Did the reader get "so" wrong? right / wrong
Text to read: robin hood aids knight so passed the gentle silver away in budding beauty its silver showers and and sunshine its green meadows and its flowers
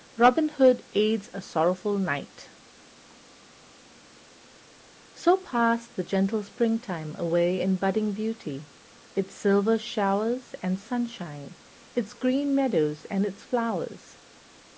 right